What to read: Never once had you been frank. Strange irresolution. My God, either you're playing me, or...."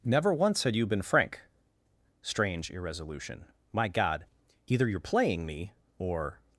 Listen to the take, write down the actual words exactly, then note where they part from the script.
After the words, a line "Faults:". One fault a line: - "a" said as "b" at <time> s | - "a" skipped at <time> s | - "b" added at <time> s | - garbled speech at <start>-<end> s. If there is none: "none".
Never once had you been frank. Strange irresolution. My God, either you're playing me, or...."
Faults:
none